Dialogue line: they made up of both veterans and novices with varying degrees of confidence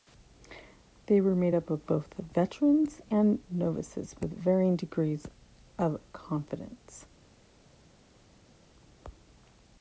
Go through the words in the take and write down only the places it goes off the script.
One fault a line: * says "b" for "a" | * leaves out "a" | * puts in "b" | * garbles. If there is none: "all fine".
* puts in "were"